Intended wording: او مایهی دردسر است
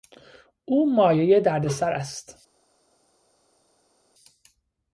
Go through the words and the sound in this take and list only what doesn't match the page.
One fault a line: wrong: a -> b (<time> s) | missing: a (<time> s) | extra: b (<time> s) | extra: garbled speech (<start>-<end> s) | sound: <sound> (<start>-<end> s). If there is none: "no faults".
no faults